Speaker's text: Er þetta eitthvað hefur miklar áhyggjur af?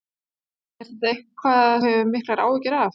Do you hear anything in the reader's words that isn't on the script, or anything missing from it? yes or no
no